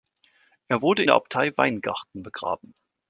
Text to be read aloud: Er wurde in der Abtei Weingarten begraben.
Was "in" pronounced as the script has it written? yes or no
no